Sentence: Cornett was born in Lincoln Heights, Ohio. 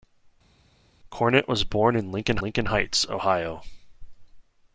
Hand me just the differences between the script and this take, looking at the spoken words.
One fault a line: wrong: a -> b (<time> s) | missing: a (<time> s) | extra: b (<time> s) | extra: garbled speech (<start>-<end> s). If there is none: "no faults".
extra: Lincoln (2.4 s)